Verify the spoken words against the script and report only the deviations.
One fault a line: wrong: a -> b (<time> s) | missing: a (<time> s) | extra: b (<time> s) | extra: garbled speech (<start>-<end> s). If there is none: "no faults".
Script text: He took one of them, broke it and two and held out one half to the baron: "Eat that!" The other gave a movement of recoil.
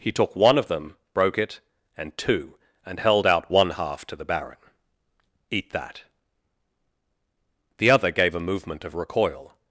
no faults